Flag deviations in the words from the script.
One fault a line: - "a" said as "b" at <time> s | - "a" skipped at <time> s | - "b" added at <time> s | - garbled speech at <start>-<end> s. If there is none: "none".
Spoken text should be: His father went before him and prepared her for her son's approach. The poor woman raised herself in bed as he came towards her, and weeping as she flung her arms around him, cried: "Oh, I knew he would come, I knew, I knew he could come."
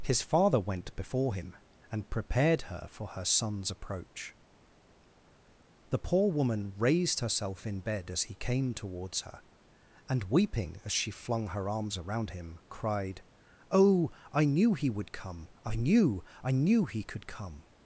none